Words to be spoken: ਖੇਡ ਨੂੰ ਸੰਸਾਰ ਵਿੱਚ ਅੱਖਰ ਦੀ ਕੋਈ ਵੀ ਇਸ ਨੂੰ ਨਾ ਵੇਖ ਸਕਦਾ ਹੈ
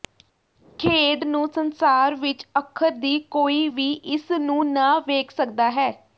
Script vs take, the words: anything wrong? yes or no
no